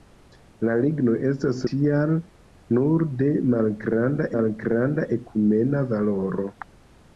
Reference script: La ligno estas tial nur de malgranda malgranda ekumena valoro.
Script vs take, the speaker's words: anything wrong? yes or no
no